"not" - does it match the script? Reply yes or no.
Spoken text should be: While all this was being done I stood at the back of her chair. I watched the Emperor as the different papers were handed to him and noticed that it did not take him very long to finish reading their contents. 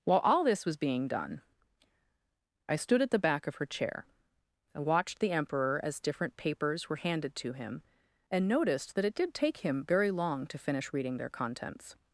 no